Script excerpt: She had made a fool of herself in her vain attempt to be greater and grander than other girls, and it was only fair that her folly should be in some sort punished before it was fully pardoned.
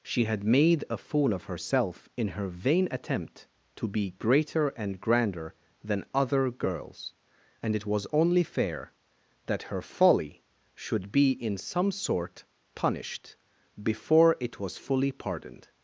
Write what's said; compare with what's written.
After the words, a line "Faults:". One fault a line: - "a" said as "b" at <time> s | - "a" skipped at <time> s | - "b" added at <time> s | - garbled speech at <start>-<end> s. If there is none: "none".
She had made a fool of herself in her vain attempt to be greater and grander than other girls, and it was only fair that her folly should be in some sort punished before it was fully pardoned.
Faults:
none